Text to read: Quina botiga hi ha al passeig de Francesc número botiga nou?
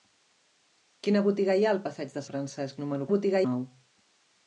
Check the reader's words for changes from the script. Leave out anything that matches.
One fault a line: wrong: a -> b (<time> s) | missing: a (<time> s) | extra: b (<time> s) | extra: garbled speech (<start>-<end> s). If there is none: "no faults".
no faults